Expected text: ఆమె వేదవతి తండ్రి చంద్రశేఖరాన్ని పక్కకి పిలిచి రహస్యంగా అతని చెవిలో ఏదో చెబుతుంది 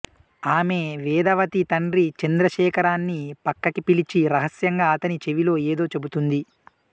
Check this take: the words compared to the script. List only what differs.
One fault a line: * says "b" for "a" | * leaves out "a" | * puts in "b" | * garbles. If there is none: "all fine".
all fine